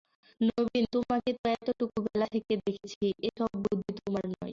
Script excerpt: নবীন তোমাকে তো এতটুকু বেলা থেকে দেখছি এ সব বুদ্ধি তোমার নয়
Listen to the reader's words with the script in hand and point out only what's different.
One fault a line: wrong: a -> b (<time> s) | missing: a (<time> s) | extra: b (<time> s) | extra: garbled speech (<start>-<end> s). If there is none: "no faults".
no faults